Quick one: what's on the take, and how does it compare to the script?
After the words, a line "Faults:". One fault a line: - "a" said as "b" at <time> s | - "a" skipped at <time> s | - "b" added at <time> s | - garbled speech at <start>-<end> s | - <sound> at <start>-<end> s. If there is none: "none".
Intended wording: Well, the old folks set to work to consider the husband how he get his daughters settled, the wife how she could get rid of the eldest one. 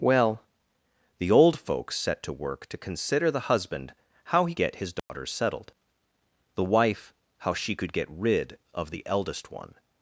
Well, the old folks set to work to consider the husband how he get his daughters settled, the wife how she could get rid of the eldest one.
Faults:
- dropout at 5.0-5.1 s